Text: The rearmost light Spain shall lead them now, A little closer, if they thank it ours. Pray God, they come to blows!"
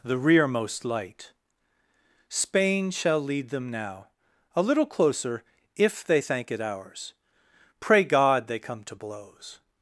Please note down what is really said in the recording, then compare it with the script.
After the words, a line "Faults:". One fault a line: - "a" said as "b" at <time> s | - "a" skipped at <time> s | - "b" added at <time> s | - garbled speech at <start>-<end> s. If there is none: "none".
The rearmost light Spain shall lead them now, A little closer, if they thank it ours. Pray God, they come to blows!"
Faults:
none